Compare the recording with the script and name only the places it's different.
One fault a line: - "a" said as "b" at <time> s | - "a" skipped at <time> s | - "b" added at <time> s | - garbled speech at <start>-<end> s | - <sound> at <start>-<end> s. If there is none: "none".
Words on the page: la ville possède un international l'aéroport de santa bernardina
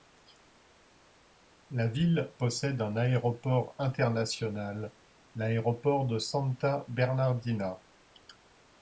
- "aéroport" added at 3.0 s